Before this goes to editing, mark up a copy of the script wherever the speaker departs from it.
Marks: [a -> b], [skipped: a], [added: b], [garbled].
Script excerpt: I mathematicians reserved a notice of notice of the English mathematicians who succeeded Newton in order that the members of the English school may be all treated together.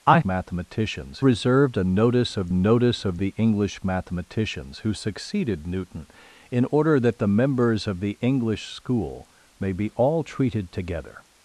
I mathematicians reserved a notice of notice of the English mathematicians who succeeded Newton in order that the members of the English school may be all treated together.